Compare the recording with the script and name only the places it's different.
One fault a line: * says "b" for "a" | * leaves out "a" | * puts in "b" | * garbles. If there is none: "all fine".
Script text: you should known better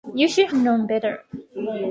all fine